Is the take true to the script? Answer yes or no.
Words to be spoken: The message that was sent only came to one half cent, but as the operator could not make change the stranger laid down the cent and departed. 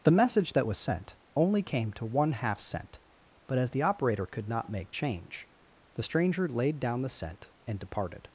yes